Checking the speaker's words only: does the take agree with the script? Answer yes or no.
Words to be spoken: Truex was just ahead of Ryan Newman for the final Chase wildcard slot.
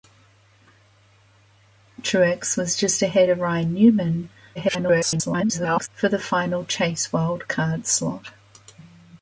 no